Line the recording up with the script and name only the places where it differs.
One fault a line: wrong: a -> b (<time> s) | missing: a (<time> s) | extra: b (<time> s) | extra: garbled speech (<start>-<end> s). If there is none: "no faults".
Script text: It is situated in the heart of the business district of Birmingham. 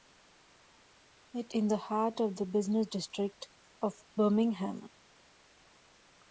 missing: is situated (1.5 s)